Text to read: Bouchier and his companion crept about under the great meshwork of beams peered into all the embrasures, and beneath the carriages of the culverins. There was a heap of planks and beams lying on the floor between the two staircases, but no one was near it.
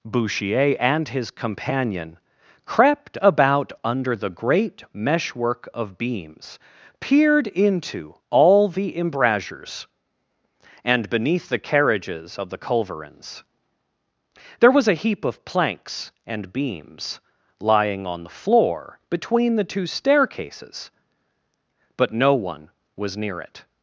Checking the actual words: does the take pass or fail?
pass